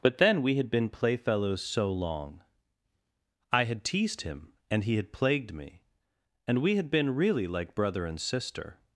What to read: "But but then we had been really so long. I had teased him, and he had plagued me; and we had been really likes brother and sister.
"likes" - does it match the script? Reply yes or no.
no